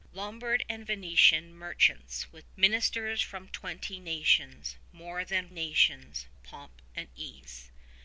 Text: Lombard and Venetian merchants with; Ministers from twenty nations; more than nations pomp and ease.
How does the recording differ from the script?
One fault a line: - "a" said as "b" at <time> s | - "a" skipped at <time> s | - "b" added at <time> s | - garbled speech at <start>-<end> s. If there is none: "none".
none